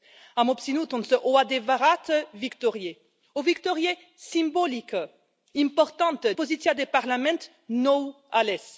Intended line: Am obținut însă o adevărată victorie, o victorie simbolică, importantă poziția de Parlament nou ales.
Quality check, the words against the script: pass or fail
pass